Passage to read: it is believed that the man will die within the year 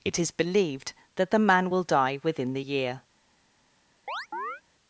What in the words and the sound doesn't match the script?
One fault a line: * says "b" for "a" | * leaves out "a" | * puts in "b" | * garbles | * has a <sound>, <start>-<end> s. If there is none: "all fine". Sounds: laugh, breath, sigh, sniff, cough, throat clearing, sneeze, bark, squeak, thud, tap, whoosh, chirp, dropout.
* has a chirp, 4.1-4.6 s